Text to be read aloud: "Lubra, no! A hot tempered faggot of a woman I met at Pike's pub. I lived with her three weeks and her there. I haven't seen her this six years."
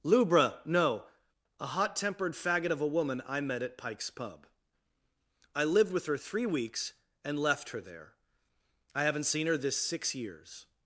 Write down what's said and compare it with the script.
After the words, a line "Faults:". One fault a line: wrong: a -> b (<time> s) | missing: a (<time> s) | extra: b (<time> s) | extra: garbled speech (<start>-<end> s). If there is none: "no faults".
"Lubra, no! A hot tempered faggot of a woman I met at Pike's pub. I lived with her three weeks and left her there. I haven't seen her this six years."
Faults:
extra: left (7.4 s)